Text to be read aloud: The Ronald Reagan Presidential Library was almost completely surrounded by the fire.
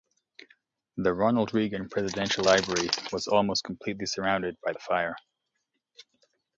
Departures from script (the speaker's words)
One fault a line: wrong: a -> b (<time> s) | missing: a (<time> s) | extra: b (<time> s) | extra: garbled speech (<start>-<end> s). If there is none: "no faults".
no faults